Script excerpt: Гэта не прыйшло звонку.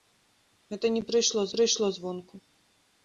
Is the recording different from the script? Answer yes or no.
yes